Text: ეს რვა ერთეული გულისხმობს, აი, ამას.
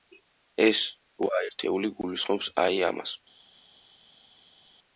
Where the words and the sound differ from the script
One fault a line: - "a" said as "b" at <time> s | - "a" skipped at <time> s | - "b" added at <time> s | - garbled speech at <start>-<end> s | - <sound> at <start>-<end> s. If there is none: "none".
none